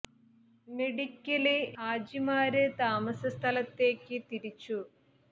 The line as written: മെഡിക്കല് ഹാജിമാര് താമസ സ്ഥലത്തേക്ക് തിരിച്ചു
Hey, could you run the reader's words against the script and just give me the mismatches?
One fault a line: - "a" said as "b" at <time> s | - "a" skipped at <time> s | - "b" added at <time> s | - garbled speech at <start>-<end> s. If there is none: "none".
none